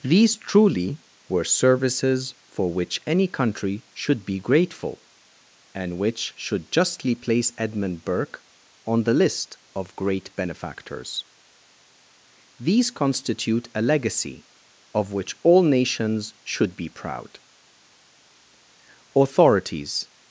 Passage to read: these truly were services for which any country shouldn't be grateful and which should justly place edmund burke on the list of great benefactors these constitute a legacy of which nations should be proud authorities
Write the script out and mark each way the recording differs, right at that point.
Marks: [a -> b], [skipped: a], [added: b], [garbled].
these truly were services for which any country [shouldn't -> should] be grateful and which should justly place edmund burke on the list of great benefactors these constitute a legacy of which [added: all] nations should be proud authorities